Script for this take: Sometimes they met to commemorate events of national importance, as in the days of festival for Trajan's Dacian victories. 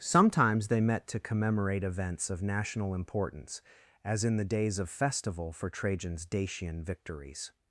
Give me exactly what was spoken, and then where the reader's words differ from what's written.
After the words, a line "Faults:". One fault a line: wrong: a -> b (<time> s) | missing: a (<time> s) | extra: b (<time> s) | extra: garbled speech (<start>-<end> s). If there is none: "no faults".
Sometimes they met to commemorate events of national importance, as in the days of festival for Trajan's Dacian victories.
Faults:
no faults